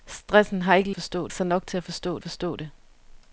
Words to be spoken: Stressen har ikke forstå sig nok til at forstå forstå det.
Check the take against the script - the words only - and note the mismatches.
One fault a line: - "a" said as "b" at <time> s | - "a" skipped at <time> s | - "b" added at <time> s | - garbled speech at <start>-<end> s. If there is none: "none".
none